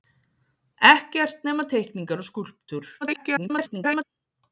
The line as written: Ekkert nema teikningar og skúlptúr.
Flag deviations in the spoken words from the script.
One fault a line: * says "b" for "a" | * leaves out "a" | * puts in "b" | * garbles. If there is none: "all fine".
* garbles